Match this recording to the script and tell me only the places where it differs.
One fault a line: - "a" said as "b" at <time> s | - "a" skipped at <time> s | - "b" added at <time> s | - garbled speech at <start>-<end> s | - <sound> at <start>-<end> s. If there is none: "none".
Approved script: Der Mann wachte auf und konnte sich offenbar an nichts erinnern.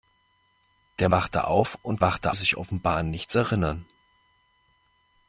- "Mann" skipped at 1.1 s
- "konnte" said as "wachte" at 2.0 s